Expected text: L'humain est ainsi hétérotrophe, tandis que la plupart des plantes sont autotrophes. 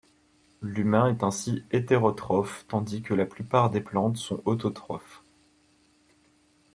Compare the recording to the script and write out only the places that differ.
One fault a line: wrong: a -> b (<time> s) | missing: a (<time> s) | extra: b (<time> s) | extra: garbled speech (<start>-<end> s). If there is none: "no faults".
no faults